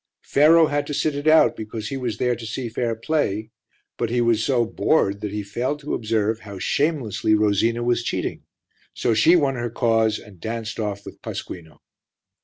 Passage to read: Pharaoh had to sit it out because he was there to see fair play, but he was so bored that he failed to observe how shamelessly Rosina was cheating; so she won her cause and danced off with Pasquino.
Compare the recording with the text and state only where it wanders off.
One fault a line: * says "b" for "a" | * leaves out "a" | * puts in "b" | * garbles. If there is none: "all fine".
all fine